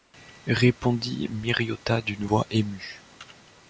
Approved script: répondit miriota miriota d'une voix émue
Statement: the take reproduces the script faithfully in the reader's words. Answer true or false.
false